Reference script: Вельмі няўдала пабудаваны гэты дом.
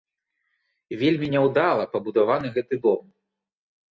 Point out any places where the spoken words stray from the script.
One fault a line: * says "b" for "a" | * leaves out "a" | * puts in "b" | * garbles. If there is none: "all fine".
all fine